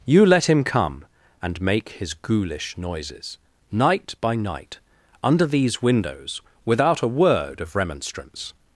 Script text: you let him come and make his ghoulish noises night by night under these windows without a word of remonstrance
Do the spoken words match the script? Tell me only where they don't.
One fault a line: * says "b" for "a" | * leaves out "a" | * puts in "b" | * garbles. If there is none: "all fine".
all fine